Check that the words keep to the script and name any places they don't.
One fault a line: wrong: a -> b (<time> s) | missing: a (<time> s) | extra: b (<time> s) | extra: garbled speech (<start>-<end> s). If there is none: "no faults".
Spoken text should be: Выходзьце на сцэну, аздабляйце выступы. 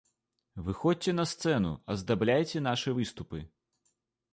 extra: нашы (2.6 s)